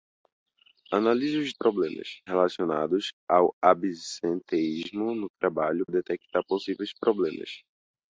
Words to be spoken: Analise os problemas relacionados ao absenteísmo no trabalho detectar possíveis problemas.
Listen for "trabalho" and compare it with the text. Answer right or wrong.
right